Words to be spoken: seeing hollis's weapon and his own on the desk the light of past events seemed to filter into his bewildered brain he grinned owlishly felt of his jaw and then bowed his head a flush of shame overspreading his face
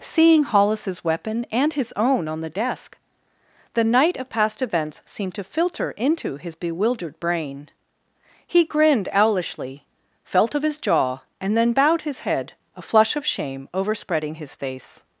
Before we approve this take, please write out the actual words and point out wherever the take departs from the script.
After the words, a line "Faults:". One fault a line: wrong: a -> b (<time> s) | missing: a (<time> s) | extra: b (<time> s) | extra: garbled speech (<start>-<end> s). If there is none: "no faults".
seeing hollis's weapon and his own on the desk the night of past events seemed to filter into his bewildered brain he grinned owlishly felt of his jaw and then bowed his head a flush of shame overspreading his face
Faults:
wrong: light -> night (3.8 s)